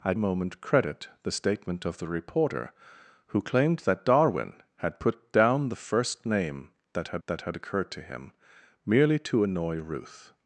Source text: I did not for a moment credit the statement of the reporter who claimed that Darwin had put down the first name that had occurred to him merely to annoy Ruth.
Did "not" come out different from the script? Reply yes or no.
yes